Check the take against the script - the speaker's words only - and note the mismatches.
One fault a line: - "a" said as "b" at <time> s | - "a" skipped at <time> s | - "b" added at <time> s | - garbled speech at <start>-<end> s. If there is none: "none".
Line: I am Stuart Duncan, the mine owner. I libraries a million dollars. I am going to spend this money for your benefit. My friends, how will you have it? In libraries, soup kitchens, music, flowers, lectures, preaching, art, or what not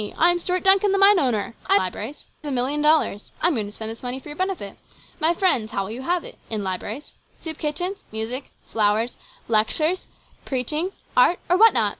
none